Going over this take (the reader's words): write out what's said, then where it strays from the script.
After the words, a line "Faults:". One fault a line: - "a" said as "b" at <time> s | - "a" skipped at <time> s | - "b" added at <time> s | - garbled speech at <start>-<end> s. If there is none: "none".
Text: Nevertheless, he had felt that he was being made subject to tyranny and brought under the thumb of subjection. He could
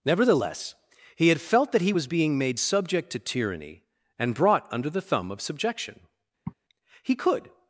Nevertheless, he had felt that he was being made subject to tyranny and brought under the thumb of subjection. He could
Faults:
none